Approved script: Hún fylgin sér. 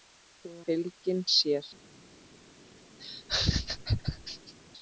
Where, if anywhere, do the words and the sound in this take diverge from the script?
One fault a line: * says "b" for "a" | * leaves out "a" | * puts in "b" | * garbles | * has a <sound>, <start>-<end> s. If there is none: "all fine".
* has a laugh, 3.0-4.5 s